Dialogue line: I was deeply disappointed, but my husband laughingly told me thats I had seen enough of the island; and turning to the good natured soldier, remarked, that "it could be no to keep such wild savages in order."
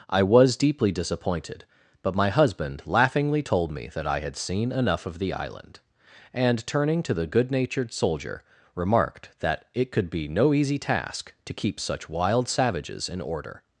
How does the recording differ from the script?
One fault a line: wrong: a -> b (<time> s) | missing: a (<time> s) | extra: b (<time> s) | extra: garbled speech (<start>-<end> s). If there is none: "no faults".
wrong: thats -> that (3.9 s)
extra: easy task (10.6 s)